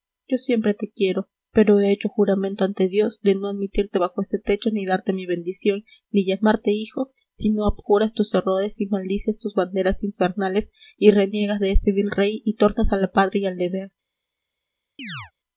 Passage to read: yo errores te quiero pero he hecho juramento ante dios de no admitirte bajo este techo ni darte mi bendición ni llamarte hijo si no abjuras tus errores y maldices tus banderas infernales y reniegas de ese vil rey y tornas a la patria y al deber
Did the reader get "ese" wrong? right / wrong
right